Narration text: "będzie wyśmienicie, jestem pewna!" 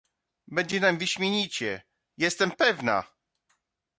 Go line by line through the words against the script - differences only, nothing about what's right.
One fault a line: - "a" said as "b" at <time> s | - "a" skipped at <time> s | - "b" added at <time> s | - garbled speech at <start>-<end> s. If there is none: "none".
- "nam" added at 0.8 s